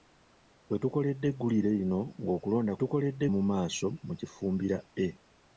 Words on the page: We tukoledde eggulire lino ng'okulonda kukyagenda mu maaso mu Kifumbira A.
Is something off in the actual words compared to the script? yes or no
yes